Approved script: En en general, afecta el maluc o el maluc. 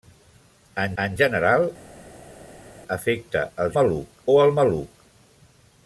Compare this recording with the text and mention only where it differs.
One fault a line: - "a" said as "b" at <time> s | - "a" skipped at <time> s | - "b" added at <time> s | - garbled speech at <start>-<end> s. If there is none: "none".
none